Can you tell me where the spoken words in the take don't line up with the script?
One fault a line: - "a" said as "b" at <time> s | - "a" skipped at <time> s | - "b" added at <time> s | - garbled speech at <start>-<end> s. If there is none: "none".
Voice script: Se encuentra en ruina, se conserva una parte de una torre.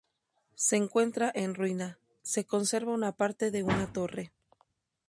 none